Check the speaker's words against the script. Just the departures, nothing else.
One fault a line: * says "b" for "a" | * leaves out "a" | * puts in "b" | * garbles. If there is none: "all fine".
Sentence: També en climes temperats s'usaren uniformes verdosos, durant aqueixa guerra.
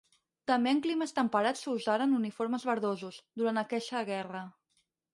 all fine